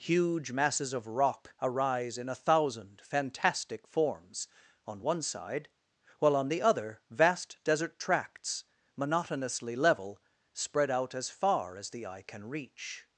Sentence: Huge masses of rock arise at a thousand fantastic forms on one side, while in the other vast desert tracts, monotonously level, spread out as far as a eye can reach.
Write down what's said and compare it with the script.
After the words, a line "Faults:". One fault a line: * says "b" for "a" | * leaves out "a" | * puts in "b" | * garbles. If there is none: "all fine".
Huge masses of rock arise in a thousand fantastic forms on one side, while on the other vast desert tracts, monotonously level, spread out as far as the eye can reach.
Faults:
* says "in" for "at"
* says "on" for "in"
* says "the" for "a"